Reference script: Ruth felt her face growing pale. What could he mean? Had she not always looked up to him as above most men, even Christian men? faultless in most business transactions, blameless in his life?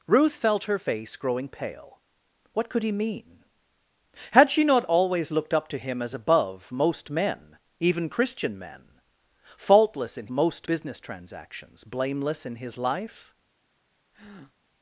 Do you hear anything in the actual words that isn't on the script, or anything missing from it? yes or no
no